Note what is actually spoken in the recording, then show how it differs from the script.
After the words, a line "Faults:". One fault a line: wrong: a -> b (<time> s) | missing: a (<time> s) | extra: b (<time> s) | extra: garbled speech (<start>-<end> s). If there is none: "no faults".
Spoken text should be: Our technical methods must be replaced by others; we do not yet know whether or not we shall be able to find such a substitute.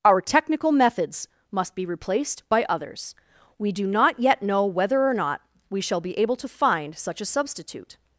Our technical methods must be replaced by others; we do not yet know whether or not we shall be able to find such a substitute.
Faults:
no faults